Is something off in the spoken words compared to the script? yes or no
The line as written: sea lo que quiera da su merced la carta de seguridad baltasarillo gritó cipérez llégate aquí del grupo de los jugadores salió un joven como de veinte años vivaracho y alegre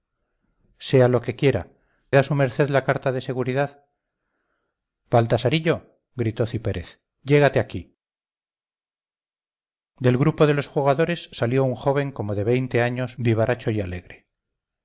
no